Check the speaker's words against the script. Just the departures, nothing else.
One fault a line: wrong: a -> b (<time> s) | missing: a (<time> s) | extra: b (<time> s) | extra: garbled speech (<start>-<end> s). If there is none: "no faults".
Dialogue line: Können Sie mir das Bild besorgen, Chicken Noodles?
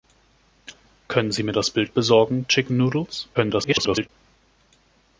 extra: garbled speech (3.3-4.1 s)